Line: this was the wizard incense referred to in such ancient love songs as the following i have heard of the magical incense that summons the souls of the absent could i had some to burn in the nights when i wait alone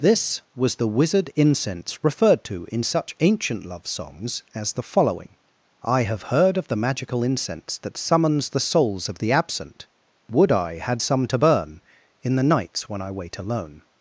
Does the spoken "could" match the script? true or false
false